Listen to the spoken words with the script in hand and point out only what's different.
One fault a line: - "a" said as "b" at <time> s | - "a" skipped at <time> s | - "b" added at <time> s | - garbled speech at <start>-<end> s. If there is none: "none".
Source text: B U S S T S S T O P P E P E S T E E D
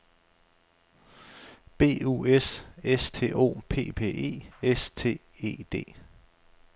- "S S T" skipped at 3.3 s
- "P E" skipped at 4.5 s
- "E" skipped at 5.6 s